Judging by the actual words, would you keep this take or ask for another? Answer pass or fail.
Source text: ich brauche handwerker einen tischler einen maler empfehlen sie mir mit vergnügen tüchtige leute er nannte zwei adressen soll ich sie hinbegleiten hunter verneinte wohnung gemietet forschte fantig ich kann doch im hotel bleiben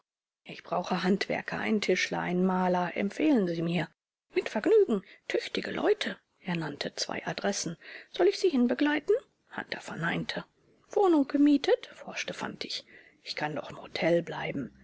pass